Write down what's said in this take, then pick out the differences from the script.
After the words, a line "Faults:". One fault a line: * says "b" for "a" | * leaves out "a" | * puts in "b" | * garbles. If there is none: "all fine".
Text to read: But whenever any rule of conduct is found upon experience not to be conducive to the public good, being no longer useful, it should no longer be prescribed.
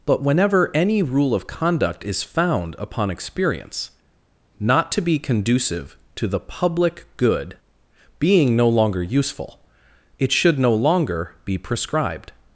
But whenever any rule of conduct is found upon experience not to be conducive to the public good, being no longer useful, it should no longer be prescribed.
Faults:
all fine